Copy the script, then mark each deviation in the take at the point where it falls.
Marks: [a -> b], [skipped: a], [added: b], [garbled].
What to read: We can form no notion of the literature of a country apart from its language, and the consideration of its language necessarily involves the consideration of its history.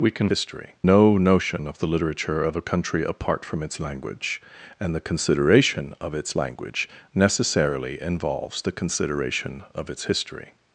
We can [form -> history] no notion of the literature of a country apart from its language, and the consideration of its language necessarily involves the consideration of its history.